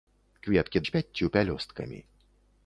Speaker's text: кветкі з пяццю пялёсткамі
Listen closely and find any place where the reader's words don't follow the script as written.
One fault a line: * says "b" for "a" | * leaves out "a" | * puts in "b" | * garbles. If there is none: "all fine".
all fine